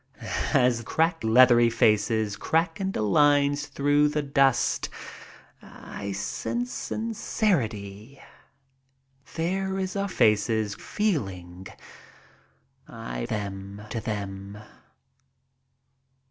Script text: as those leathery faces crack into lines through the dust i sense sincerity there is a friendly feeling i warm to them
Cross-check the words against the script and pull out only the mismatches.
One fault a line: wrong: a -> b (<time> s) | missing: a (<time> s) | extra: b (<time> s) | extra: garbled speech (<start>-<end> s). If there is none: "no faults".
wrong: those -> crack (0.8 s)
wrong: friendly -> faces (10.1 s)
wrong: warm -> them (13.2 s)